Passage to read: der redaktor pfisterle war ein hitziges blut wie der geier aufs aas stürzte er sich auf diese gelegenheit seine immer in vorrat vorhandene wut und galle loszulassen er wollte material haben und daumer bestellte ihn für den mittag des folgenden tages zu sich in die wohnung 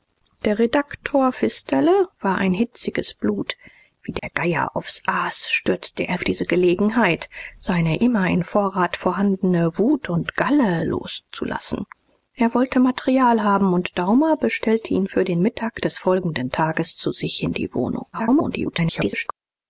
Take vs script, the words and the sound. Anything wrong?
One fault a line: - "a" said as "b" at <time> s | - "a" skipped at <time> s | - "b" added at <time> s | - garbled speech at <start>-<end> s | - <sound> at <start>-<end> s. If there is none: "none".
- dropout at 4.2-4.2 s
- "sich" skipped at 6.2 s
- garbled speech at 18.1-19.3 s